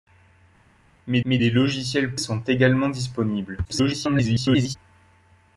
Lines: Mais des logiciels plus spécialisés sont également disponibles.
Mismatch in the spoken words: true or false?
true